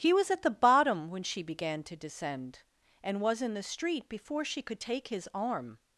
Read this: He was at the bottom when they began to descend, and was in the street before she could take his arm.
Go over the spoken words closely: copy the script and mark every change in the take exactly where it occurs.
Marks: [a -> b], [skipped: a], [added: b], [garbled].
He was at the bottom when [they -> she] began to descend, and was in the street before she could take his arm.